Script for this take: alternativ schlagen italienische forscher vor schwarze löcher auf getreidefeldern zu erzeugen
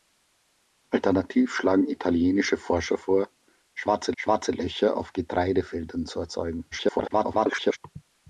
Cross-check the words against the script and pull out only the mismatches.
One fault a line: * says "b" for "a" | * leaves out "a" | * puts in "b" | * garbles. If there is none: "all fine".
* puts in "schwarze"
* garbles